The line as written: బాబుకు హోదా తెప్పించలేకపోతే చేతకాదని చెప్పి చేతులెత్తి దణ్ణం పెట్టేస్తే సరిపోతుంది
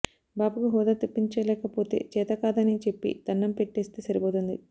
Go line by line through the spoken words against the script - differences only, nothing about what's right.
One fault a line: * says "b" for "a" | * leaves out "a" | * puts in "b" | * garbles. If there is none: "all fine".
* leaves out "చేతులెత్తి"